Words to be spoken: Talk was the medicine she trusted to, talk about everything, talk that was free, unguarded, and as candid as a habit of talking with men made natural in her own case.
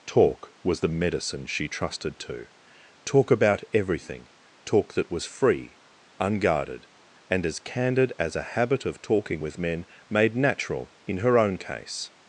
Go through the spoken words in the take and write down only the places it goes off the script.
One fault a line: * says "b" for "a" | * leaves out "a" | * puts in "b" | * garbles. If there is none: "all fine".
all fine